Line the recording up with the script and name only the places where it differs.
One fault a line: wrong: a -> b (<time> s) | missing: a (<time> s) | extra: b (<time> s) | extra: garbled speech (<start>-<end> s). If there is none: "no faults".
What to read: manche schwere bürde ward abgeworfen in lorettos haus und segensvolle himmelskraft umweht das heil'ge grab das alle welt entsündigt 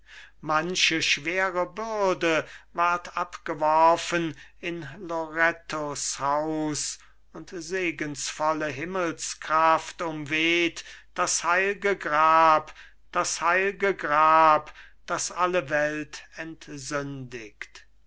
extra: heil'ge grab das (13.4 s)